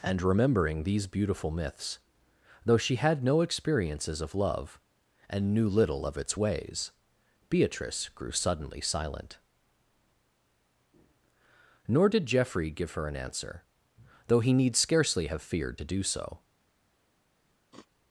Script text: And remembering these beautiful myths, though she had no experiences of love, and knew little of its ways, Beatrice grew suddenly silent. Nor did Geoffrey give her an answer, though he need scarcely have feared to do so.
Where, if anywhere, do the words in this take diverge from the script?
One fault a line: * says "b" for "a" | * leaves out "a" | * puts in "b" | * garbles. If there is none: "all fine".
all fine